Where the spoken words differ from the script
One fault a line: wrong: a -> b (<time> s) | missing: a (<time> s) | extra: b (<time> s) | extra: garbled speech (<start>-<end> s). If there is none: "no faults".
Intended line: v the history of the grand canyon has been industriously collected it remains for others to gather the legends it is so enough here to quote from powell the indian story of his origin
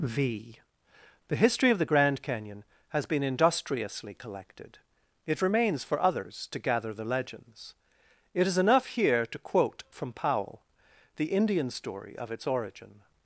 missing: so (8.6 s)
wrong: his -> its (12.3 s)